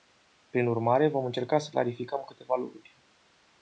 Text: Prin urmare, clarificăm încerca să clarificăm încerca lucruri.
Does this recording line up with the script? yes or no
no